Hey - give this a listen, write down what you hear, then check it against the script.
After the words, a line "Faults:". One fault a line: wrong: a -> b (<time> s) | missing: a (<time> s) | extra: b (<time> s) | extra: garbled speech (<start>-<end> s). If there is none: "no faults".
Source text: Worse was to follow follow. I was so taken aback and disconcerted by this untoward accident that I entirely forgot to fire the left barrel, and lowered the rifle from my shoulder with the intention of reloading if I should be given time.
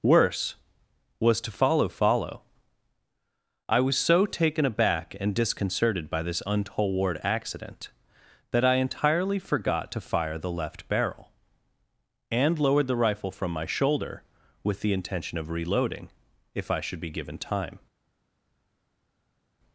Worse was to follow follow. I was so taken aback and disconcerted by this untoward accident that I entirely forgot to fire the left barrel, and lowered the rifle from my shoulder with the intention of reloading if I should be given time.
Faults:
no faults